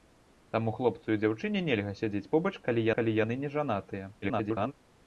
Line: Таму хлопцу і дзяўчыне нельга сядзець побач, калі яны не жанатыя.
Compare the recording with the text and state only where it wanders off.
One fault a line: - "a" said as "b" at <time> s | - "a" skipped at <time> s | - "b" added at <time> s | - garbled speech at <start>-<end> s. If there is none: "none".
- "калі" added at 3.0 s
- garbled speech at 4.2-4.7 s